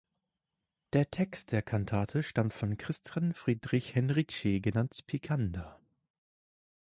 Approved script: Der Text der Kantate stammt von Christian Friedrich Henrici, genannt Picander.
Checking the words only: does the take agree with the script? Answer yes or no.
yes